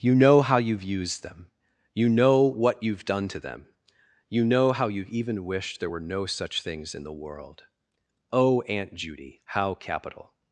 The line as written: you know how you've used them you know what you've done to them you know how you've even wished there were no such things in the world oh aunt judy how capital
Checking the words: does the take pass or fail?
pass